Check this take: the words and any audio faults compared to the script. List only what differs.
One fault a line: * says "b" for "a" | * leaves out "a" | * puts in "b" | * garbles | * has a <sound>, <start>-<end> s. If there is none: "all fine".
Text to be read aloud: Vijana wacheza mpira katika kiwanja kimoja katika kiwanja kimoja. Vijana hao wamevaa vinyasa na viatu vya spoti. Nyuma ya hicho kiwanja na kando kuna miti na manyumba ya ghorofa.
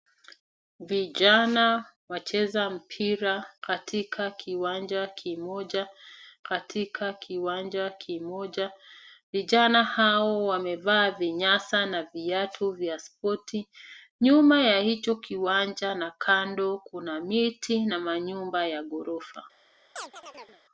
* has a chirp, 20.0-20.6 s